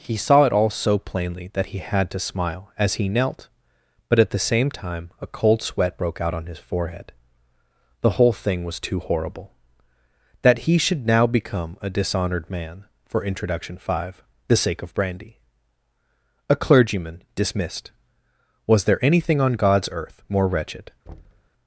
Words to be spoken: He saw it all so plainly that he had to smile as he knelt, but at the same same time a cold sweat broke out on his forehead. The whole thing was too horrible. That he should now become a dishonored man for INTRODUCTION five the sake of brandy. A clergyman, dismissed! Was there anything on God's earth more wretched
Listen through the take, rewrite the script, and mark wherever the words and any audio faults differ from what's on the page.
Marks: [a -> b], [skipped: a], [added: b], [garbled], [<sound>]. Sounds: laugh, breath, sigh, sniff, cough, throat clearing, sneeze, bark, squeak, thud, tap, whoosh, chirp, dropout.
He saw it all so plainly that he had to smile as he knelt, but at the same [skipped: same] time a cold sweat broke out on his forehead. The whole thing was too horrible. That he should now become a dishonored man for INTRODUCTION five the sake of brandy. A clergyman, dismissed! Was there anything on God's earth more wretched [thud]